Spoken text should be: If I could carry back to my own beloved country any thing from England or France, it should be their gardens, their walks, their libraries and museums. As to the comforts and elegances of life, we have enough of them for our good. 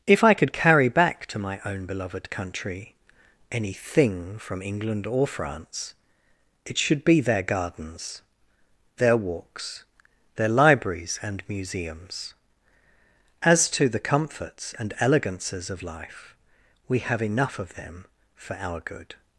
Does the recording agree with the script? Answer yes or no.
yes